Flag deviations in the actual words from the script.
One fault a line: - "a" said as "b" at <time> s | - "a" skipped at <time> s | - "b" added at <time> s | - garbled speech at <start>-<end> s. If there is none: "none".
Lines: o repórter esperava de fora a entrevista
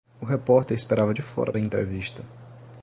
none